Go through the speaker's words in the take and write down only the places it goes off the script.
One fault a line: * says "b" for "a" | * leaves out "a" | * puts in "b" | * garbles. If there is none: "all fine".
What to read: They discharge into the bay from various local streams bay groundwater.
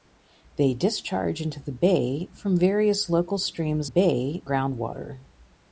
all fine